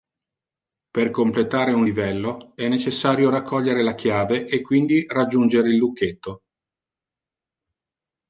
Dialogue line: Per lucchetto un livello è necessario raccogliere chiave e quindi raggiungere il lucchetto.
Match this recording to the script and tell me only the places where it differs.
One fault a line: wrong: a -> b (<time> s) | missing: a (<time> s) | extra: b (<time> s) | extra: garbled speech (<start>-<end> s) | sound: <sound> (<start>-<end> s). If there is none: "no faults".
wrong: lucchetto -> completare (1.1 s)
extra: la (3.8 s)